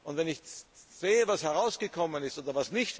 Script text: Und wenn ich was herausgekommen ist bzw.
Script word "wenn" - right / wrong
right